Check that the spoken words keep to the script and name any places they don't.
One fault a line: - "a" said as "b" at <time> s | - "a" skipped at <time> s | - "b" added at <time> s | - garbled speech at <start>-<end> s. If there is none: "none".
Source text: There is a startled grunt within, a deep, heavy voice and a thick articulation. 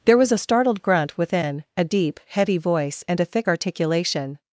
- "is" said as "was" at 0.2 s